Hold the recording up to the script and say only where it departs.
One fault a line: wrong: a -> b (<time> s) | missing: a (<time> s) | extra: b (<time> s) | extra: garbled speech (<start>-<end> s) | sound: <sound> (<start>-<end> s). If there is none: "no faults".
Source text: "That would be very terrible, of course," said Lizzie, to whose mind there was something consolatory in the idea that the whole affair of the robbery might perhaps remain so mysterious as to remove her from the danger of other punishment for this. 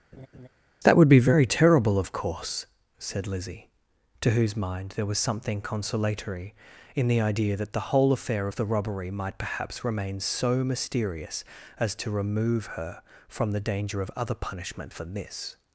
sound: laugh (0.1-0.5 s)